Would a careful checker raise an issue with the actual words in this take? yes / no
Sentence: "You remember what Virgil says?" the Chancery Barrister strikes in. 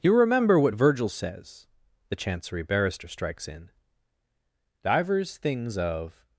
yes